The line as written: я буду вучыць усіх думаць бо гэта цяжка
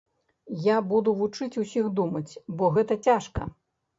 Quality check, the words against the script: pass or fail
pass